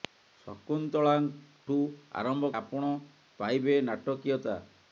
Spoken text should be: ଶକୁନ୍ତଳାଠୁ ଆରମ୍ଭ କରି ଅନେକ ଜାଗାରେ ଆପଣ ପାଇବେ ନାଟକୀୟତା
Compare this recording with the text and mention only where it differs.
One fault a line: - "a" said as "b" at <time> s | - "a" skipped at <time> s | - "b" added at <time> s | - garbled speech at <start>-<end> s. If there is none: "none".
- "କରି ଅନେକ ଜାଗାରେ" skipped at 2.5 s